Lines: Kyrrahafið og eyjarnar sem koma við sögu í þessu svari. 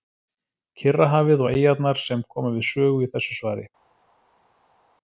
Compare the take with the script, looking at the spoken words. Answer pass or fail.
pass